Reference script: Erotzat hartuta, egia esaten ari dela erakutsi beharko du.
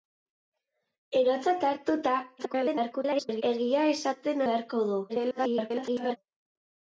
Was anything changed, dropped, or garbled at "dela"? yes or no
yes